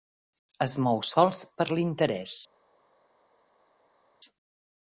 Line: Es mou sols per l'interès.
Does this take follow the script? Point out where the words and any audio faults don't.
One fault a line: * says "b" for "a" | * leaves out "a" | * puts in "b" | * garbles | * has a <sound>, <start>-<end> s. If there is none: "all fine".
all fine